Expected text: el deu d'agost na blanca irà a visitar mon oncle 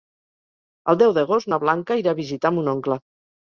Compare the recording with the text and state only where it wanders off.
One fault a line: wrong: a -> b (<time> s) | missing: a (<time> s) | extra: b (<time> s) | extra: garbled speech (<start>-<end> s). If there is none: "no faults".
no faults